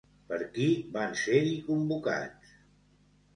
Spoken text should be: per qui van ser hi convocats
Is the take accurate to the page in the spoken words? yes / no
yes